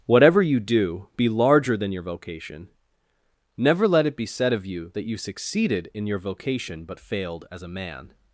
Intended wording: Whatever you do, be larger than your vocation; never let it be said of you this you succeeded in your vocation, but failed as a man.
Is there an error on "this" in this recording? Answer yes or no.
yes